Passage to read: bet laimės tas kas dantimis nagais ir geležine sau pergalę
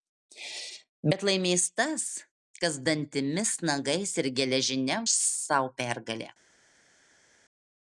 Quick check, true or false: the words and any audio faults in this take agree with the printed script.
true